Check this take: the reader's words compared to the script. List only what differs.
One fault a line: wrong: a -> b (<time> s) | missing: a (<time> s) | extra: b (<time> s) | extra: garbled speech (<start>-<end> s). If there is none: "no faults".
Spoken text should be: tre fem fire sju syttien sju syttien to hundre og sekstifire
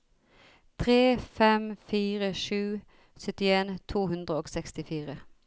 missing: sju syttien (3.7 s)